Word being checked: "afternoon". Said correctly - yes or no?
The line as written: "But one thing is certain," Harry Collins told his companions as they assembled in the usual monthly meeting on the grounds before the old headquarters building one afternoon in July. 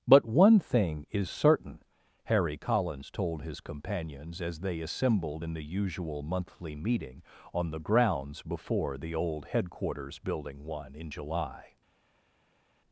no